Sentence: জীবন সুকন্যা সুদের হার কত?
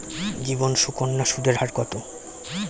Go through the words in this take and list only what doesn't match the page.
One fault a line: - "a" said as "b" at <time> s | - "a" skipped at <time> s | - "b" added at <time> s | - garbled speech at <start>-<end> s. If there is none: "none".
none